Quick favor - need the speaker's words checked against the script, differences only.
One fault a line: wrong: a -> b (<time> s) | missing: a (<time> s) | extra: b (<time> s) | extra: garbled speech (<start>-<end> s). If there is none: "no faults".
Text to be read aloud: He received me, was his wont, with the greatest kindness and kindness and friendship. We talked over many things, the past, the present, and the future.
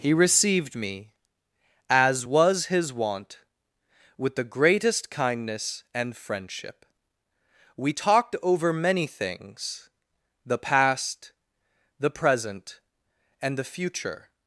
extra: as (1.9 s)
missing: kindness and (6.2 s)